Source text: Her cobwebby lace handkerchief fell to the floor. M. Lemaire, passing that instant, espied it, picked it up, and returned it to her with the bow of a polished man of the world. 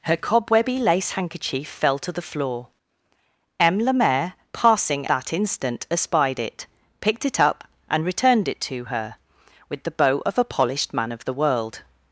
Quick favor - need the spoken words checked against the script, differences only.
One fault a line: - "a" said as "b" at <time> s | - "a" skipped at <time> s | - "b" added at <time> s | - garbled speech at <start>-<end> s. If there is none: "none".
none